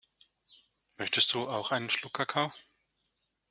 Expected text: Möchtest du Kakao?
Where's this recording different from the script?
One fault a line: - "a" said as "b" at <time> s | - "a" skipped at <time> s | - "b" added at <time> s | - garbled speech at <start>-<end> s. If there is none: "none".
- "auch einen Schluck" added at 1.5 s